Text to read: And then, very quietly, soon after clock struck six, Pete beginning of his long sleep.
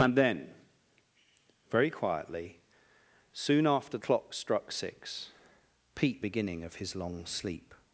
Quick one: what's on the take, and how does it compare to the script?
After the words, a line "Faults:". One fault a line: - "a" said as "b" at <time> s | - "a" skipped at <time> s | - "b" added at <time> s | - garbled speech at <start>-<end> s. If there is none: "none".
And then, very quietly, soon after clock struck six, Pete beginning of his long sleep.
Faults:
none